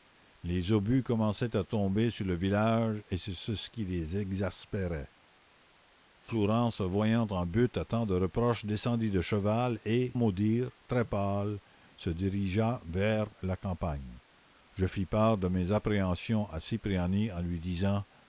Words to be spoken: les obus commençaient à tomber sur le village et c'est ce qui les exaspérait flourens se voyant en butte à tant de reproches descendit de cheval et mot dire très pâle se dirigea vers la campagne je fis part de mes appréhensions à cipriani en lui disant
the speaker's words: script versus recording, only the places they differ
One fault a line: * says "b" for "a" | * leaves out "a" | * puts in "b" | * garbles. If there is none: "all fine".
all fine